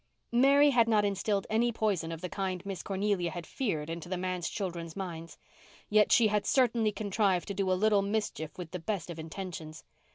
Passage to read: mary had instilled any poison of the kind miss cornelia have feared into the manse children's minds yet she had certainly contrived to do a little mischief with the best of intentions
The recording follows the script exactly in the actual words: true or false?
false